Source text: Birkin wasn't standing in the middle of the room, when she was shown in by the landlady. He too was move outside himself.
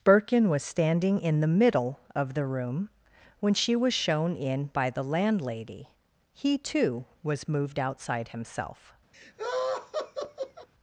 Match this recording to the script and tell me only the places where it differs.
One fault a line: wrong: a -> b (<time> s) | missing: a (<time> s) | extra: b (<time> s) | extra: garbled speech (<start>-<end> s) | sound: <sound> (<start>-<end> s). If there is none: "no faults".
wrong: wasn't -> was (0.5 s)
wrong: move -> moved (7.5 s)
sound: laugh (9.1-10.7 s)